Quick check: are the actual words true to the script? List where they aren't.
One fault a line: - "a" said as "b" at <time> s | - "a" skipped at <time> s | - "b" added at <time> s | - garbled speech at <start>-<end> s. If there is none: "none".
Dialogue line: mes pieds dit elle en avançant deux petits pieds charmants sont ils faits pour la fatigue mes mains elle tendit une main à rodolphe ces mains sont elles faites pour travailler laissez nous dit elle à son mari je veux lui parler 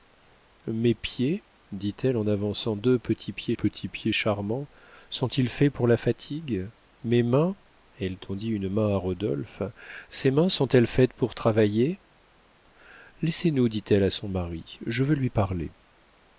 - "petits pieds" added at 3.5 s